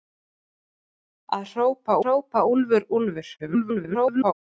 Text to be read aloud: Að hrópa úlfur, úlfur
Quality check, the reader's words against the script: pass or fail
fail